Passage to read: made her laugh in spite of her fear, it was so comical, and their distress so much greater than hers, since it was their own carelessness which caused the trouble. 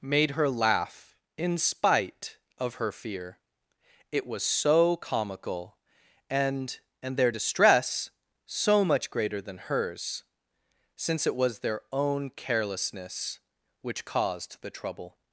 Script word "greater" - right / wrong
right